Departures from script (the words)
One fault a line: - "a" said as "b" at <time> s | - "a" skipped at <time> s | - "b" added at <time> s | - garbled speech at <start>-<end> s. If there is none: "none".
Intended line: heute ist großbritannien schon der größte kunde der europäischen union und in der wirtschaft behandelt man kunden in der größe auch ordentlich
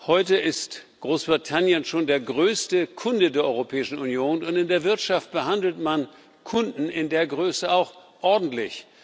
none